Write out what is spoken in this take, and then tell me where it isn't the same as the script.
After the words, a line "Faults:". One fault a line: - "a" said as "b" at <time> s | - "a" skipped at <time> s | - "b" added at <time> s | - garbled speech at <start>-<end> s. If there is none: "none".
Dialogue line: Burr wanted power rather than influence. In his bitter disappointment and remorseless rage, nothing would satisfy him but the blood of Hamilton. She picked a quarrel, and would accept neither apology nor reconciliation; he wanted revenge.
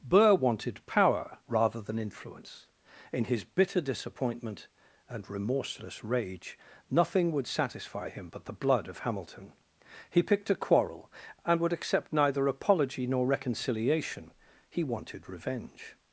Burr wanted power rather than influence. In his bitter disappointment and remorseless rage, nothing would satisfy him but the blood of Hamilton. He picked a quarrel, and would accept neither apology nor reconciliation; he wanted revenge.
Faults:
- "She" said as "He" at 10.1 s